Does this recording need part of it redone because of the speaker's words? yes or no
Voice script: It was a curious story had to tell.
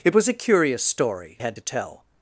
no